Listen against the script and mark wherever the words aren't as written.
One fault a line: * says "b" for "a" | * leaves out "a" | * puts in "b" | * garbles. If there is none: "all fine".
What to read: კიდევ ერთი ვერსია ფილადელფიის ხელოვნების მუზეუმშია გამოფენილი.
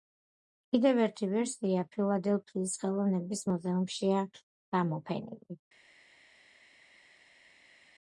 all fine